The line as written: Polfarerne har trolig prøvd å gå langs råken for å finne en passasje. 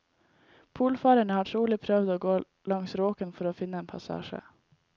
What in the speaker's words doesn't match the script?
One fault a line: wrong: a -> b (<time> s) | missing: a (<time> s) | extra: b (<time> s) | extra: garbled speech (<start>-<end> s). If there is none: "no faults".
no faults